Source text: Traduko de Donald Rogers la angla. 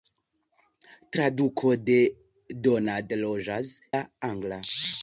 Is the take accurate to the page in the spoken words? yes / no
yes